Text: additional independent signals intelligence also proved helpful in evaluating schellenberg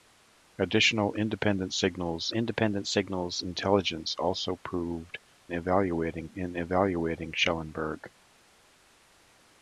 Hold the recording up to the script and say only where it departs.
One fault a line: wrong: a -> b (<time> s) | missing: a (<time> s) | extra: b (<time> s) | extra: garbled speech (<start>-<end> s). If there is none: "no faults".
extra: independent signals (2.3 s)
wrong: helpful -> evaluating (5.5 s)